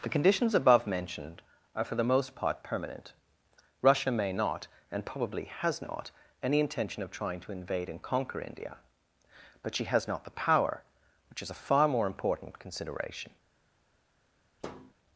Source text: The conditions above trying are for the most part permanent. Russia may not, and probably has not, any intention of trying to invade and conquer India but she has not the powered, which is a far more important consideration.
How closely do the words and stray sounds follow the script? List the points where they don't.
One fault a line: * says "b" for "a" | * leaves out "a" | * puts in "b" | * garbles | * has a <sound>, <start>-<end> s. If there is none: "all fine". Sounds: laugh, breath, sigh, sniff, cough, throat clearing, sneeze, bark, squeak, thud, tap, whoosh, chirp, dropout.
* says "mentioned" for "trying"
* says "power" for "powered"
* has a thud, 14.6-14.9 s